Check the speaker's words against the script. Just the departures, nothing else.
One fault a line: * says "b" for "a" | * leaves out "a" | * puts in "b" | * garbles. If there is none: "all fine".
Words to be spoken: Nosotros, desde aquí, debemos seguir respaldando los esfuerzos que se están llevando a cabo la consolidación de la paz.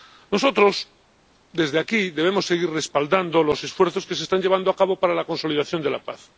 * puts in "para"